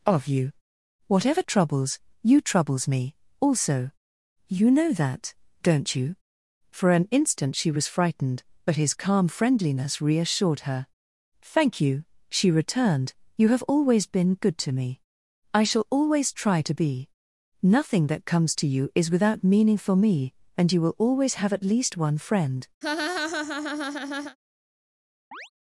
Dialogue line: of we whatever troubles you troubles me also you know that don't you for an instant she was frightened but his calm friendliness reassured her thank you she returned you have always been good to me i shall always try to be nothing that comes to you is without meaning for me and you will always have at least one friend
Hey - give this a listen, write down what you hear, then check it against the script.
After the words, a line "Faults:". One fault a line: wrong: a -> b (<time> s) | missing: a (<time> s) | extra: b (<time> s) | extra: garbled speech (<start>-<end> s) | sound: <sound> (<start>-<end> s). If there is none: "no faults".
of you whatever troubles you troubles me also you know that don't you for an instant she was frightened but his calm friendliness reassured her thank you she returned you have always been good to me i shall always try to be nothing that comes to you is without meaning for me and you will always have at least one friend
Faults:
wrong: we -> you (0.3 s)
sound: laugh (22.8-24.4 s)
sound: chirp (25.3-25.5 s)